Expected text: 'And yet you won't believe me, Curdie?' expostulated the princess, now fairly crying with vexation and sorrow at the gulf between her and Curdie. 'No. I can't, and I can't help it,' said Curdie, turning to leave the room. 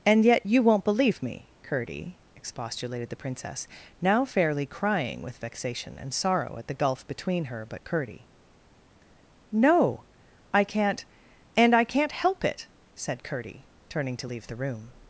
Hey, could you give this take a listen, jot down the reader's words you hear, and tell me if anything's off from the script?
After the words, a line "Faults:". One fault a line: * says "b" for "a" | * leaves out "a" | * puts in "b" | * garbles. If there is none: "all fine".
'And yet you won't believe me, Curdie?' expostulated the princess, now fairly crying with vexation and sorrow at the gulf between her but Curdie. 'No. I can't, and I can't help it,' said Curdie, turning to leave the room.
Faults:
* says "but" for "and"